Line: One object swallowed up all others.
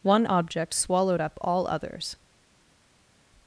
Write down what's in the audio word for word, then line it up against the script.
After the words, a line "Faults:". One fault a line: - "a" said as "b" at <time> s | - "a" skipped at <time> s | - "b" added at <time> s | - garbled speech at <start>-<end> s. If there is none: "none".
One object swallowed up all others.
Faults:
none